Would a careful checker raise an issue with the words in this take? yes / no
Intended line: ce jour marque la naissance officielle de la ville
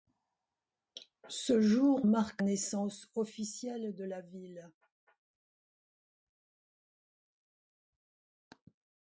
yes